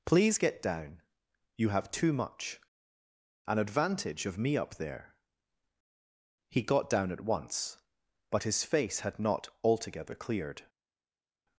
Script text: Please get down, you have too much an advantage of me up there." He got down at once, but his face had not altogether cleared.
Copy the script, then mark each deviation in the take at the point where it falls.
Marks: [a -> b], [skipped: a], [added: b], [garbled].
Please get down, you have too much an advantage of me up there." He got down at once, but his face had not altogether cleared.